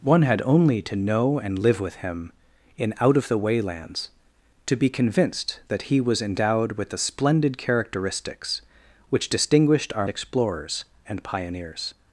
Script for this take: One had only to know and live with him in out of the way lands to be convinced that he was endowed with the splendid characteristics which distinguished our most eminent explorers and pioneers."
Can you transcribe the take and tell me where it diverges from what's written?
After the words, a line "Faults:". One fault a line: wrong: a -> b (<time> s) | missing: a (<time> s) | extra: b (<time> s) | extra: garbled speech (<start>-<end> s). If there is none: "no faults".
One had only to know and live with him in out of the way lands to be convinced that he was endowed with the splendid characteristics which distinguished our explorers and pioneers."
Faults:
missing: most eminent (10.1 s)